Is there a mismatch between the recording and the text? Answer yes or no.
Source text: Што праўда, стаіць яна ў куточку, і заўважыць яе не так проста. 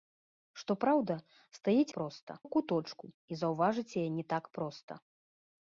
yes